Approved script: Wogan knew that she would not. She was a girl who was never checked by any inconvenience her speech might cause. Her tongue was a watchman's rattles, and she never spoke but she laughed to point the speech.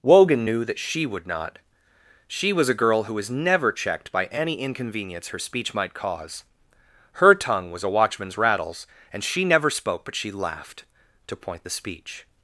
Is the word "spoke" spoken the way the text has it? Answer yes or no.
yes